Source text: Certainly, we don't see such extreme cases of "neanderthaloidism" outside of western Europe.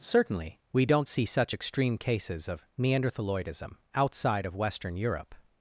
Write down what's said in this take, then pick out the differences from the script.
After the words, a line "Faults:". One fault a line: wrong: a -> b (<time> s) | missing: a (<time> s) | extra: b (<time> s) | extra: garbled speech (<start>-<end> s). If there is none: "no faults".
Certainly, we don't see such extreme cases of "neanderthaloidism" outside of western Europe.
Faults:
no faults